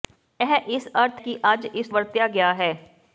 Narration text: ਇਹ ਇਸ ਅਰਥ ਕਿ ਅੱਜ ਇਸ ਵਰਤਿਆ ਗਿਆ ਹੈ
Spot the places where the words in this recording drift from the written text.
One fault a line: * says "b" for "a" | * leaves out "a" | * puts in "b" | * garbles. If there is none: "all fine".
all fine